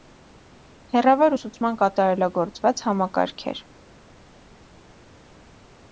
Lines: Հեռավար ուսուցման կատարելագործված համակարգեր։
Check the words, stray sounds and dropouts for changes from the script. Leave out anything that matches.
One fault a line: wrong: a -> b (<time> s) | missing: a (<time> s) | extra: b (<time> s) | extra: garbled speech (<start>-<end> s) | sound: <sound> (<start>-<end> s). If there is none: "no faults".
no faults